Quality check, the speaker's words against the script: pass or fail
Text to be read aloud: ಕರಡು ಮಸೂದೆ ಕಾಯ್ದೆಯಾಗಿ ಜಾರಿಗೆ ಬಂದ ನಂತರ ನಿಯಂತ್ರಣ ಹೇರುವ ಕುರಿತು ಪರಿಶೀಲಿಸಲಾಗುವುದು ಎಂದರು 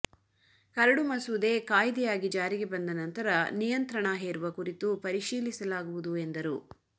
pass